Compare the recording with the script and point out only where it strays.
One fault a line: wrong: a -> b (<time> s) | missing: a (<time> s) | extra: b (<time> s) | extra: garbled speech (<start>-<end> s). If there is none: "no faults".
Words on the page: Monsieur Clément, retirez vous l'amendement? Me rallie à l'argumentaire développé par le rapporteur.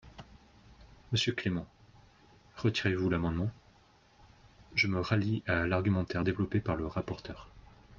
extra: Je (4.7 s)